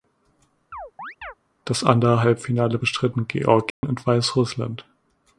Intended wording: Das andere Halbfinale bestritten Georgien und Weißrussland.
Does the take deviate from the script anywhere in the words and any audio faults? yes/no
yes